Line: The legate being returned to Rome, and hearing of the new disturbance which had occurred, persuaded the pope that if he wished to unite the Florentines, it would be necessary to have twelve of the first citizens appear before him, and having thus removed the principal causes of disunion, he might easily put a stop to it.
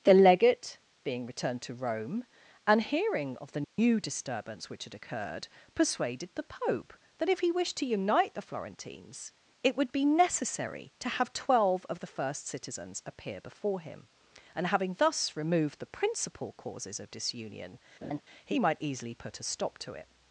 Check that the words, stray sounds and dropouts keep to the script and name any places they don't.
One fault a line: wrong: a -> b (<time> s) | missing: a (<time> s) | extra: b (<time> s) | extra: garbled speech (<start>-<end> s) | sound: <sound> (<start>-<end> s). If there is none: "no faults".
sound: dropout (3.6-3.8 s)
sound: laugh (18.0-18.2 s)